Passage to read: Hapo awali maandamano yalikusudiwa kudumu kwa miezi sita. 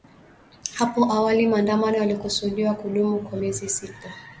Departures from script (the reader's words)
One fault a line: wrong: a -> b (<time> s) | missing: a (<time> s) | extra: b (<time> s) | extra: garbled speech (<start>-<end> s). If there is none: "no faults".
no faults